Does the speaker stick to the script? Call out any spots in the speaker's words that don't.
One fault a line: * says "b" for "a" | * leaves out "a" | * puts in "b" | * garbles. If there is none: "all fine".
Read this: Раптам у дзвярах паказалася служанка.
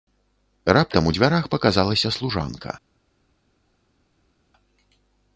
all fine